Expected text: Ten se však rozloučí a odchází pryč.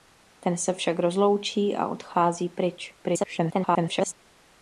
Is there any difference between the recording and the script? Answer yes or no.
yes